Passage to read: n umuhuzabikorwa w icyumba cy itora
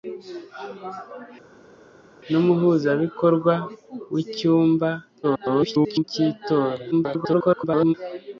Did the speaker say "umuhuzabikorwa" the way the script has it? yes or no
yes